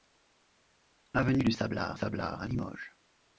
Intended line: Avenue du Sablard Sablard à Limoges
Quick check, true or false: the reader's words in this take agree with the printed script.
true